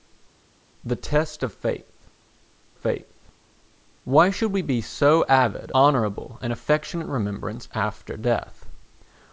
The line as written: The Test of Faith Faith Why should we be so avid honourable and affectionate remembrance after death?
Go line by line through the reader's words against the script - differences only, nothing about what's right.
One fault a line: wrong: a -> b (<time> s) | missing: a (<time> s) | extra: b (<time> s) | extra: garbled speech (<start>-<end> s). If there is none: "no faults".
no faults